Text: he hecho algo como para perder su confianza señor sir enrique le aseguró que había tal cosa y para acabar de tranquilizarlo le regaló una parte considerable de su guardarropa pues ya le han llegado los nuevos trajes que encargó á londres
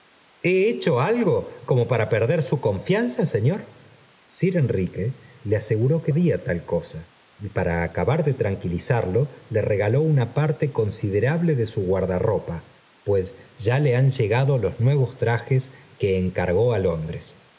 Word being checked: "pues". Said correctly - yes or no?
yes